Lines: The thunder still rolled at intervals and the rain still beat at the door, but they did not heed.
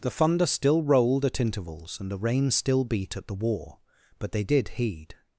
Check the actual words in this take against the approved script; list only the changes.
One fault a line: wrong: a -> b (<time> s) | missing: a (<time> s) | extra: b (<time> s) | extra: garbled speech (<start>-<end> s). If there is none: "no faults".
wrong: door -> war (3.3 s)
missing: not (4.7 s)